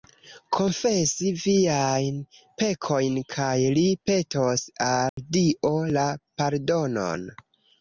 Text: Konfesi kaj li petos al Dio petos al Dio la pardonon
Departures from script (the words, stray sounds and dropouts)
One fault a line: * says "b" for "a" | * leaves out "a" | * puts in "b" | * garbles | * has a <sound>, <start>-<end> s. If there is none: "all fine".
* puts in "viajn pekojn"
* has a dropout, 5.1-5.2 s
* leaves out "petos al Dio"